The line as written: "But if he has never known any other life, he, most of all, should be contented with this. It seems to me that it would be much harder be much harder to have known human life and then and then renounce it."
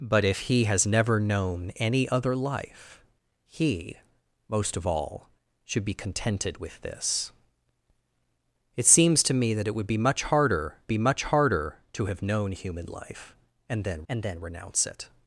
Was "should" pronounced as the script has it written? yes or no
yes